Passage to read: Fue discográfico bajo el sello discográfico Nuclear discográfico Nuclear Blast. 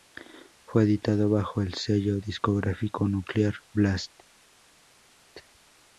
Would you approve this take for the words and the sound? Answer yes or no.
no